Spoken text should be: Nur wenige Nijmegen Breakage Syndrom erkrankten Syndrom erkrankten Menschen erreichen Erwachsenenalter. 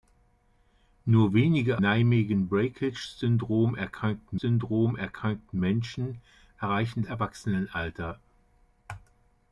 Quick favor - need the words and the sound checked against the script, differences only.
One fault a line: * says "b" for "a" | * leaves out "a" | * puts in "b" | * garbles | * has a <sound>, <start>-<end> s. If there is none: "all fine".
all fine